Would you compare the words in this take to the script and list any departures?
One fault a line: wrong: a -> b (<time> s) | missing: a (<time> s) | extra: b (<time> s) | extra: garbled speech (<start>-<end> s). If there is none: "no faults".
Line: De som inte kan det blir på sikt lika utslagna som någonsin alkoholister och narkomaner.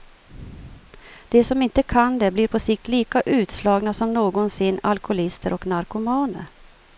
no faults